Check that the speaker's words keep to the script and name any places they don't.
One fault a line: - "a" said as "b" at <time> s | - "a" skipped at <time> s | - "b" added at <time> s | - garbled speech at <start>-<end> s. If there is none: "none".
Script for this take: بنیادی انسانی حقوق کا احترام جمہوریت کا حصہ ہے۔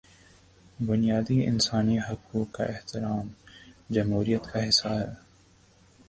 none